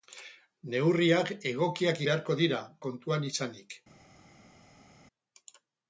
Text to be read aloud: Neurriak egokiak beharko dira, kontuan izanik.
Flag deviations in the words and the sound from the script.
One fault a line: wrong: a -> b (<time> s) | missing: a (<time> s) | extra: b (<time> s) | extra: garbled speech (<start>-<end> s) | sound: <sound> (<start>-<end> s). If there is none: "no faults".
no faults